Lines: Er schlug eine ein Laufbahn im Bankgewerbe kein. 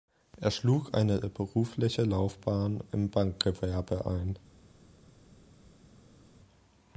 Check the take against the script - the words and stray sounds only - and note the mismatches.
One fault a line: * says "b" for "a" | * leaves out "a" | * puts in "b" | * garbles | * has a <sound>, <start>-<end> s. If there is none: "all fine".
* says "berufliche" for "ein"
* says "ein" for "kein"